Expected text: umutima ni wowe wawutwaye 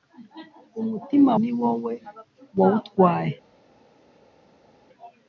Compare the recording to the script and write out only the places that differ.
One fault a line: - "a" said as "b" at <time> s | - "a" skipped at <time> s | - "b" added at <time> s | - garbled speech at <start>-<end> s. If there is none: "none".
none